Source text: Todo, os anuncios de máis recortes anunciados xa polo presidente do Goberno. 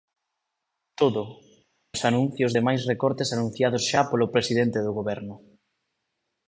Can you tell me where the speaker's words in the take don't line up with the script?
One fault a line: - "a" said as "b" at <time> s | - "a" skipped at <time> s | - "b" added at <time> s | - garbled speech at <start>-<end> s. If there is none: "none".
none